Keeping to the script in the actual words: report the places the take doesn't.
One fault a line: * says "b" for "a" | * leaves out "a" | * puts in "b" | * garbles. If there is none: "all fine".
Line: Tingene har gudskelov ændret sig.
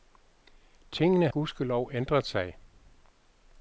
* leaves out "har"